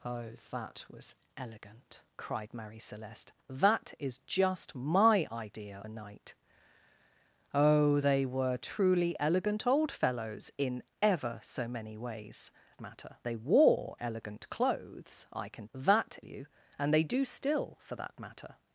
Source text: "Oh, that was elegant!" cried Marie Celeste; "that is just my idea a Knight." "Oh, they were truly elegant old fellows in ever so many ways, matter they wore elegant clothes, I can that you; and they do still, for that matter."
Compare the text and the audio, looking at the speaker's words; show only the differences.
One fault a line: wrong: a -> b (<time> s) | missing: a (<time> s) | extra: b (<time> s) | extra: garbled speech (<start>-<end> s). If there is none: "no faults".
no faults